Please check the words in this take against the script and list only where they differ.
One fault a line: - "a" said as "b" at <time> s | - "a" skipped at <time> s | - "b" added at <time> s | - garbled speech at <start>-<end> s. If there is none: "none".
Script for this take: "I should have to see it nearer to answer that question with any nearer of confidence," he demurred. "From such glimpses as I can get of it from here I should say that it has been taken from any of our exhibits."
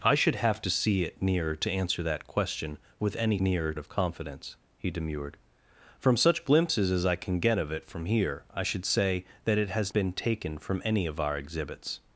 none